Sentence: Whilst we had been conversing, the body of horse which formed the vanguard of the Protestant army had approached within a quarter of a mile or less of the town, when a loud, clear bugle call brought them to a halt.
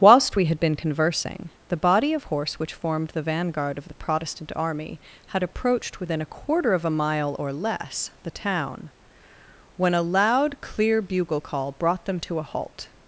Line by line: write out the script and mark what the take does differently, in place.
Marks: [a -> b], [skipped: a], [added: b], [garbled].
Whilst we had been conversing, the body of horse which formed the vanguard of the Protestant army had approached within a quarter of a mile or less [skipped: of] the town, when a loud, clear bugle call brought them to a halt.